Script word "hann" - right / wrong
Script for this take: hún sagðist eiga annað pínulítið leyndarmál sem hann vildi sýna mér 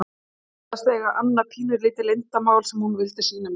wrong